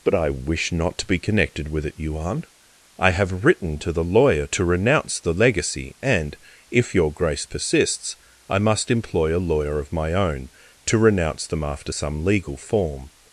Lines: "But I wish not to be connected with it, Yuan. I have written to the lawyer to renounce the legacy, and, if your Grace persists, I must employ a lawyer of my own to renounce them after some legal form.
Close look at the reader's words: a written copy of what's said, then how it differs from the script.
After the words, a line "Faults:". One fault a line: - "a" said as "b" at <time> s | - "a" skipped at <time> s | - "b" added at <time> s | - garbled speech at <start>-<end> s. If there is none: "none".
"But I wish not to be connected with it, Yuan. I have written to the lawyer to renounce the legacy, and, if your Grace persists, I must employ a lawyer of my own to renounce them after some legal form.
Faults:
none